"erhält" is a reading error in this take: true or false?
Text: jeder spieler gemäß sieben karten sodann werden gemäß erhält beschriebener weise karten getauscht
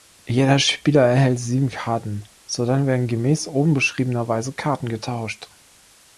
true